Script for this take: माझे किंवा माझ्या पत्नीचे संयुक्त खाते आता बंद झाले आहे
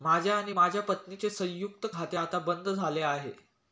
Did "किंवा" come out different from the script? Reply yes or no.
yes